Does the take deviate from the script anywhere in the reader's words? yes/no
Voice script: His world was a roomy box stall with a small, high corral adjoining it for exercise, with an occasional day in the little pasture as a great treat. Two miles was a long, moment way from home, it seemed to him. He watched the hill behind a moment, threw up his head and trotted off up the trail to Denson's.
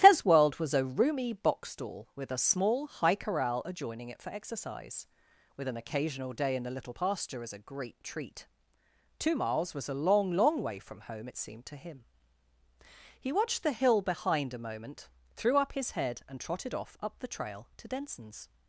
yes